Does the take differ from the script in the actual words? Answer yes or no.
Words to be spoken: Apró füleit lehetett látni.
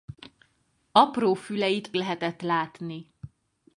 no